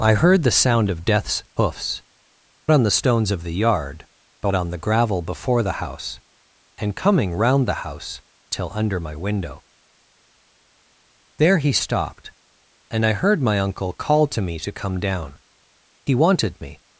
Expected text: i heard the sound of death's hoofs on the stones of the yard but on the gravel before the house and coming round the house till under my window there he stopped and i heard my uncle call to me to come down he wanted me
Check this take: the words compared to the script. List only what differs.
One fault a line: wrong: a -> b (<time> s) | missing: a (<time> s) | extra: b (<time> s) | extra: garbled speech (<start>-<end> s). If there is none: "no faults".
no faults